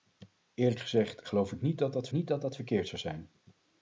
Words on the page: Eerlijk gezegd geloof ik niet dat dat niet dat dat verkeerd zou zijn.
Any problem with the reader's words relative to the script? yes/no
no